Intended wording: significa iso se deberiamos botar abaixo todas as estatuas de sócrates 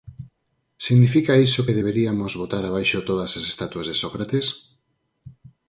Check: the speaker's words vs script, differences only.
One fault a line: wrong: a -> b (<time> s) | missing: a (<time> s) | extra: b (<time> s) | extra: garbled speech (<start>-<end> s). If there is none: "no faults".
wrong: se -> que (1.6 s)